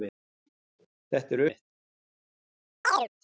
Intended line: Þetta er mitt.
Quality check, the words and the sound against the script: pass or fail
fail